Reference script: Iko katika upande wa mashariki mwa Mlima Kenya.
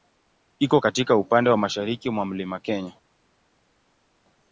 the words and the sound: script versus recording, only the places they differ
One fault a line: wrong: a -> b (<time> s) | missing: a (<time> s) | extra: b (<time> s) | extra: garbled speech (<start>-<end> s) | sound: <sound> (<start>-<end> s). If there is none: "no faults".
no faults